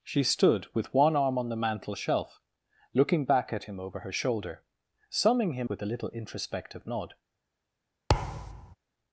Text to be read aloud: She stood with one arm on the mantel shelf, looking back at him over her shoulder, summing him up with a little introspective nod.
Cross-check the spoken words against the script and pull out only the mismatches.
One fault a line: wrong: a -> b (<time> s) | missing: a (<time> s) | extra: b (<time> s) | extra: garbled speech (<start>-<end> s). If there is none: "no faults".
missing: up (5.7 s)